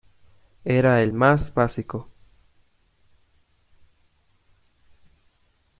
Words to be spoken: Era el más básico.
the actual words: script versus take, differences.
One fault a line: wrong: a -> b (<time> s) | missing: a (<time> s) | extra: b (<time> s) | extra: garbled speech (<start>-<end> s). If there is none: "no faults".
no faults